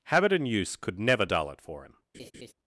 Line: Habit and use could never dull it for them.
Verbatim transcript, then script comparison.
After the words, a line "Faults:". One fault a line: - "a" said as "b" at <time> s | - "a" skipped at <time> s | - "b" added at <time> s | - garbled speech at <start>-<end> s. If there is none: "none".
Habit and use could never dull it for him.
Faults:
- "them" said as "him" at 1.8 s